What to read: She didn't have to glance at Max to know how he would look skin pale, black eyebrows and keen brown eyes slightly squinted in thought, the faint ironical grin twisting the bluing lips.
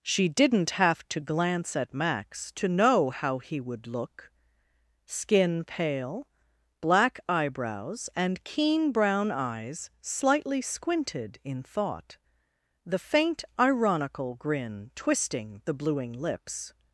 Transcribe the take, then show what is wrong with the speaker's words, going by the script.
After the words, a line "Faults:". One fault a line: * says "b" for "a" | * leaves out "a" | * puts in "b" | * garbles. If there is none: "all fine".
She didn't have to glance at Max to know how he would look skin pale, black eyebrows and keen brown eyes slightly squinted in thought, the faint ironical grin twisting the bluing lips.
Faults:
all fine